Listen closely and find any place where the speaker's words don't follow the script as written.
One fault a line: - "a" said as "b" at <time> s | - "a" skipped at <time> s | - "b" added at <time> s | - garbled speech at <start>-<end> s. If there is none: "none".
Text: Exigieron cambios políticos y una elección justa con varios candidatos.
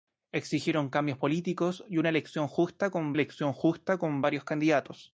- "elección justa con" added at 3.1 s